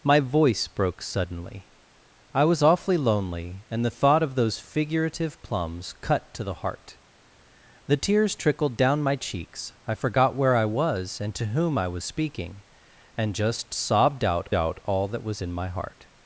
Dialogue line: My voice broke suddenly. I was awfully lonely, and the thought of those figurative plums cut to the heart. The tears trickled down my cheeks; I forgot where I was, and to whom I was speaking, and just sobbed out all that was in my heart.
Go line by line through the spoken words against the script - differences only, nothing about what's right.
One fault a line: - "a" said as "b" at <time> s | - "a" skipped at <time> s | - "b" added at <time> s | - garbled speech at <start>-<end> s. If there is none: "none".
- "out" added at 14.5 s